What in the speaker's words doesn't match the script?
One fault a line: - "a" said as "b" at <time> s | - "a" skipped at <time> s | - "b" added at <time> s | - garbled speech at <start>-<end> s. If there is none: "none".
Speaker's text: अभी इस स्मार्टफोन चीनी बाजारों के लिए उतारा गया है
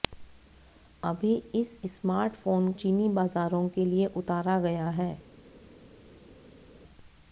none